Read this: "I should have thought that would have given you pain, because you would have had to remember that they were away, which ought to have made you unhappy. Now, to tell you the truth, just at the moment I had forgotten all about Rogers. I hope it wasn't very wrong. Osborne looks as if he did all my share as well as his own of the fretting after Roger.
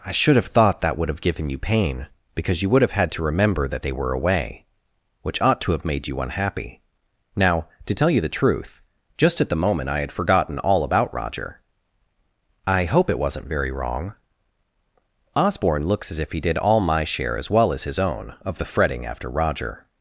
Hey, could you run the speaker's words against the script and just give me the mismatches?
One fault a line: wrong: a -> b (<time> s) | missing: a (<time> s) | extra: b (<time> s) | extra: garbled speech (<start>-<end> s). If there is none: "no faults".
wrong: Rogers -> Roger (11.1 s)